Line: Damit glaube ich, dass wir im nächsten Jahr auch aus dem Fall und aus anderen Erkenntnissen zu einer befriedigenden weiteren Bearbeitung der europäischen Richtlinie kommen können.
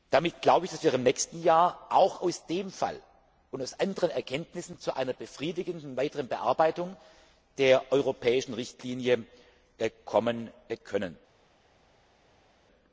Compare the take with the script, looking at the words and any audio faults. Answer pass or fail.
pass